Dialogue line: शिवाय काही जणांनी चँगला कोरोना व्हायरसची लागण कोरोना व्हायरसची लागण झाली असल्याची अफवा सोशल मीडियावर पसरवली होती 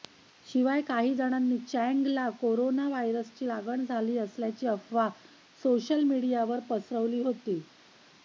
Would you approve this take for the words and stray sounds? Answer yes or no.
no